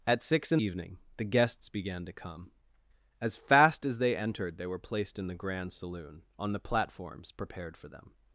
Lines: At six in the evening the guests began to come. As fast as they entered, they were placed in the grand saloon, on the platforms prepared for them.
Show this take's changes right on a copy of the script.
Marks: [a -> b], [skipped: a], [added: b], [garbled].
At six in [skipped: the] evening the guests began to come. As fast as they entered, they were placed in the grand saloon, on the platforms prepared for them.